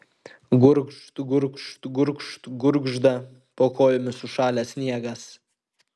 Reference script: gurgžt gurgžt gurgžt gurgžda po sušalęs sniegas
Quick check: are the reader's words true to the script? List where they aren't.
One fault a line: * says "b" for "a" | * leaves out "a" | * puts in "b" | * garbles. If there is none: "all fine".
* puts in "kojomis"